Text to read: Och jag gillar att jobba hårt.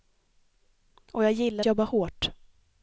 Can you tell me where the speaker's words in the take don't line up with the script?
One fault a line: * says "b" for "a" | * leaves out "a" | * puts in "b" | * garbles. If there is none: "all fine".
* leaves out "att"